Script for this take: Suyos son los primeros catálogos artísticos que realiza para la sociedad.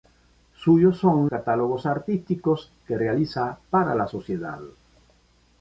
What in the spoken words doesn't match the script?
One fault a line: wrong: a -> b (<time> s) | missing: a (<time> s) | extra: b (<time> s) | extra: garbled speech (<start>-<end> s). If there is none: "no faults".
missing: los primeros (1.3 s)